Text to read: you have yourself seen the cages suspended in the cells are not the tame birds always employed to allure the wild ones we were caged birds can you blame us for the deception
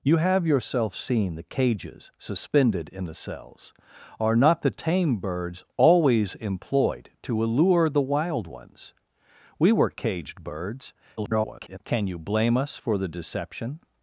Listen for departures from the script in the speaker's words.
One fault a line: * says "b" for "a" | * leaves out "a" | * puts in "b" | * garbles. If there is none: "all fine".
* garbles